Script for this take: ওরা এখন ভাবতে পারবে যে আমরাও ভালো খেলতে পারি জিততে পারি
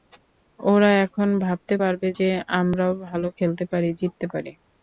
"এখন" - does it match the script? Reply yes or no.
yes